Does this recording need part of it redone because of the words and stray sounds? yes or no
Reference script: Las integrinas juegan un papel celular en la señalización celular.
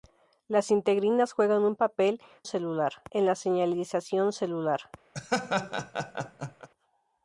yes